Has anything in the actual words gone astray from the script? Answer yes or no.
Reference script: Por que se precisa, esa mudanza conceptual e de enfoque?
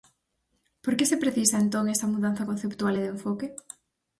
yes